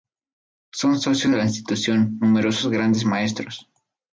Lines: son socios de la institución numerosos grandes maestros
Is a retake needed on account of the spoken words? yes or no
no